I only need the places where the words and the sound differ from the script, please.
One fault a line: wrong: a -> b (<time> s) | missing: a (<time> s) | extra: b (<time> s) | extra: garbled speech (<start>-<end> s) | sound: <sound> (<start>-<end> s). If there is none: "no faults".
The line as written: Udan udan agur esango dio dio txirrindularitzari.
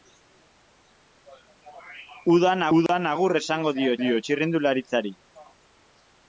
sound: dropout (2.9-2.9 s)